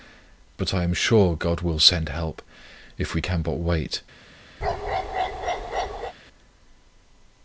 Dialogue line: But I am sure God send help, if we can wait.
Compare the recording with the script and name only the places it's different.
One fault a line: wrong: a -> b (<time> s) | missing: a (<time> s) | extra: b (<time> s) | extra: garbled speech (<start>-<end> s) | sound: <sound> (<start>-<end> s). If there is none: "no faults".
extra: will (1.6 s)
extra: but (3.4 s)
sound: bark (4.6-6.1 s)